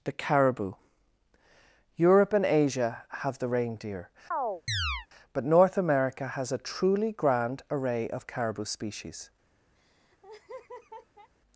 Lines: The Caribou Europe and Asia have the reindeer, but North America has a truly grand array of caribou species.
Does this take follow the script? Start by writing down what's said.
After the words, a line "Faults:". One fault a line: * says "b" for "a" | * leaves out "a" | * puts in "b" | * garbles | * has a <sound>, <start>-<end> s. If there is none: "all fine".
The Caribou Europe and Asia have the reindeer, but North America has a truly grand array of caribou species.
Faults:
* has a chirp, 4.3-5.1 s
* has a laugh, 9.8-11.3 s